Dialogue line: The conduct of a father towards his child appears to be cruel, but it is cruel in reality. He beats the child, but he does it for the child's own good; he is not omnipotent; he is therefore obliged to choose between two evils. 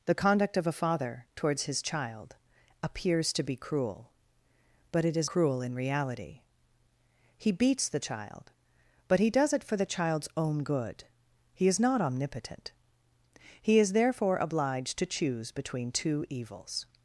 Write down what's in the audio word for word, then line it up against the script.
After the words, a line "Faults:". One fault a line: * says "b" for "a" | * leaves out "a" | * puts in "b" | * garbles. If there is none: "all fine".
The conduct of a father towards his child appears to be cruel, but it is cruel in reality. He beats the child, but he does it for the child's own good; he is not omnipotent; he is therefore obliged to choose between two evils.
Faults:
all fine